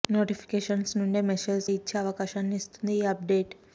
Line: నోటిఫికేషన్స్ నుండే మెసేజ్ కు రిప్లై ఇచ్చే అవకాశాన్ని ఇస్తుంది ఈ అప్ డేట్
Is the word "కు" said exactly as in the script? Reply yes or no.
no